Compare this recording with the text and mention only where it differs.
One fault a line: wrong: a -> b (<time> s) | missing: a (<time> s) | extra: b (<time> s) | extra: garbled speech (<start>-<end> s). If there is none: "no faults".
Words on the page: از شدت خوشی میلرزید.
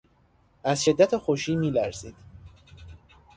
no faults